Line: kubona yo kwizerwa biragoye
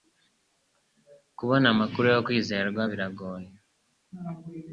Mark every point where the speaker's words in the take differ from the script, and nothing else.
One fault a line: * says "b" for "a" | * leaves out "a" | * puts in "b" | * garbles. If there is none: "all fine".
* puts in "amakuru"